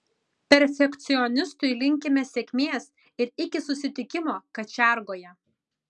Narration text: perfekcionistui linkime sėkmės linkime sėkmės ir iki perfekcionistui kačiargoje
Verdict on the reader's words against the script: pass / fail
fail